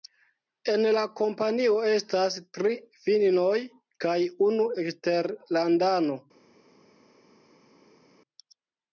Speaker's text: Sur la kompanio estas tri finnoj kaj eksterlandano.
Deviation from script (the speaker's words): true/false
true